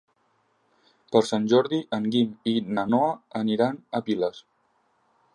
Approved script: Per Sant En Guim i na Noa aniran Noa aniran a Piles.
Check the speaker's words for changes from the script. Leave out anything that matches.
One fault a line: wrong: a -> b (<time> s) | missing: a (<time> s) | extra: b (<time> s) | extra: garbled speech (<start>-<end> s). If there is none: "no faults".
extra: Jordi (1.5 s)
missing: Noa aniran (3.8 s)